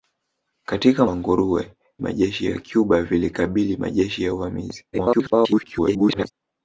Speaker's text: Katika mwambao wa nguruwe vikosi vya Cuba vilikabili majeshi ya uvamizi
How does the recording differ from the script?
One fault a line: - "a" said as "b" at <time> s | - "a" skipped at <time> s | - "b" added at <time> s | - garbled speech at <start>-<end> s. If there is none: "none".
- "mwambao" skipped at 1.1 s
- "vikosi" said as "majeshi" at 2.0 s
- garbled speech at 4.9-6.3 s